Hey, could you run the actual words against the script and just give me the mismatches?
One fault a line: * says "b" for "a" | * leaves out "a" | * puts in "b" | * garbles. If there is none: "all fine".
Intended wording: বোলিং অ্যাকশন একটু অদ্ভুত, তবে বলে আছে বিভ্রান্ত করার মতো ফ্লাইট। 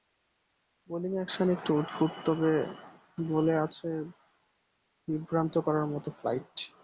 all fine